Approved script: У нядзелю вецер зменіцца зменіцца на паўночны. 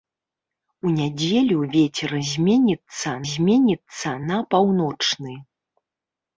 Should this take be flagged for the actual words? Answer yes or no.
no